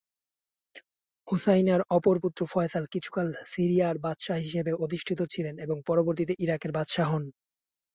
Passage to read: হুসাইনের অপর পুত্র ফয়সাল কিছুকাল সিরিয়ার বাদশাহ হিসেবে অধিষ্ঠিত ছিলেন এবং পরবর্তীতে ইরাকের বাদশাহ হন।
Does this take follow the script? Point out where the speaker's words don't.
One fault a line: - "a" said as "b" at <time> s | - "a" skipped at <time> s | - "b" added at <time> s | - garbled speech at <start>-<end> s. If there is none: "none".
none